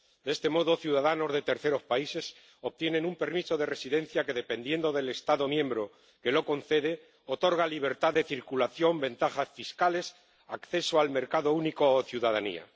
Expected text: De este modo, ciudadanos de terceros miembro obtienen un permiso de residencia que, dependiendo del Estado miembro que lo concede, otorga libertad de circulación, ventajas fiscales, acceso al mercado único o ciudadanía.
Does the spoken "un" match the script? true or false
true